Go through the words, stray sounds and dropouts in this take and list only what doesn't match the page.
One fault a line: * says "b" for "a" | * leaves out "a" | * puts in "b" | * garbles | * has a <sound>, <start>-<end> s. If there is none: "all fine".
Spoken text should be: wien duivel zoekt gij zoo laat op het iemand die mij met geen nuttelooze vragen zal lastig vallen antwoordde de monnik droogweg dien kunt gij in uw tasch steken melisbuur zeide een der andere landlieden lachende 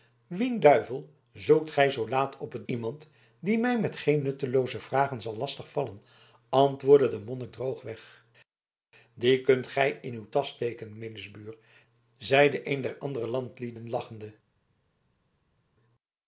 all fine